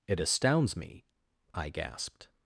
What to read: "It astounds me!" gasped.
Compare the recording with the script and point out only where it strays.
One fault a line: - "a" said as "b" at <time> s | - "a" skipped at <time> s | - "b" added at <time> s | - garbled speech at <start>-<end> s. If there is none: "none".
- "I" added at 1.5 s